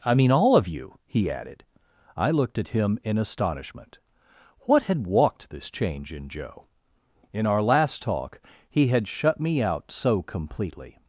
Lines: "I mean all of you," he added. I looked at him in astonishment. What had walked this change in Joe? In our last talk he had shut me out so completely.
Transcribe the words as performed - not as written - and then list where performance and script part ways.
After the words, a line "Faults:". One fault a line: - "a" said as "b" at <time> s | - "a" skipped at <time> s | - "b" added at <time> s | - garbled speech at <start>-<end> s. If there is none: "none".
"I mean all of you," he added. I looked at him in astonishment. What had walked this change in Joe? In our last talk he had shut me out so completely.
Faults:
none